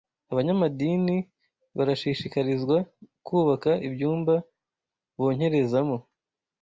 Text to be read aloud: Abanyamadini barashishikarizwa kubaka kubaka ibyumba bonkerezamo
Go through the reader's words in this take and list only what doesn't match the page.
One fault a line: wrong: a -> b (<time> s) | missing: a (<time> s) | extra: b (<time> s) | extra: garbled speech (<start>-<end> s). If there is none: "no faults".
missing: kubaka (3.7 s)